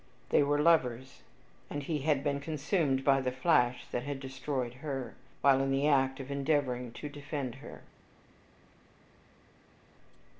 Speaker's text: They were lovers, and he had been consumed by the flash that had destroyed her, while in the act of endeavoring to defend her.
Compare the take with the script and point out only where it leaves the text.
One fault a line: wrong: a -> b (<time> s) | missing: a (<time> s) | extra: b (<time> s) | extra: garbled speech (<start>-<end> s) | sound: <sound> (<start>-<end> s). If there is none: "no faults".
no faults